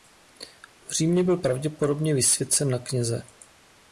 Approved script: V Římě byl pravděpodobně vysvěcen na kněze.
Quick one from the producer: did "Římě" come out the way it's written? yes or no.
yes